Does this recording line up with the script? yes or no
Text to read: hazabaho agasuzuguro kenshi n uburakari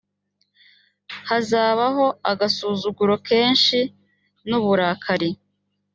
yes